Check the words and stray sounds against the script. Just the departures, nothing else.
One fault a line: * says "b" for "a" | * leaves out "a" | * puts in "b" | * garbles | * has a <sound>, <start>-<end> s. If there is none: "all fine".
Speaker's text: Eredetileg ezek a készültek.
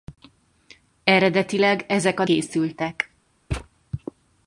* has a thud, 3.5-3.7 s